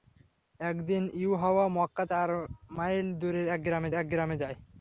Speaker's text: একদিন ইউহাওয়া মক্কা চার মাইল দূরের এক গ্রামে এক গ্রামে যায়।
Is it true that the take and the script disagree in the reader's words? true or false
false